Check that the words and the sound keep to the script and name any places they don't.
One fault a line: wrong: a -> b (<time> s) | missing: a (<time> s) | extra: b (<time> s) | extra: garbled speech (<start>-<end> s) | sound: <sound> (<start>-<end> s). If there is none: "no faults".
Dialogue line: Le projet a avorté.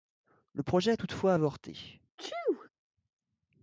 extra: toutefois (0.9 s)
sound: sneeze (2.2-2.7 s)